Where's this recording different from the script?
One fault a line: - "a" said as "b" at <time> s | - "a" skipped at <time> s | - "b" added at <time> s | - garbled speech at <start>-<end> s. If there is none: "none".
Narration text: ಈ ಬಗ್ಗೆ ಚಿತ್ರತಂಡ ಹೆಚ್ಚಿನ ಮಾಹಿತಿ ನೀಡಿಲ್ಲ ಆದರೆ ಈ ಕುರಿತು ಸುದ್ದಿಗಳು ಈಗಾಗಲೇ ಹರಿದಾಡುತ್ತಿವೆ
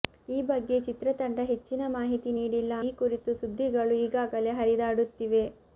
- "ಆದರೆ" skipped at 2.7 s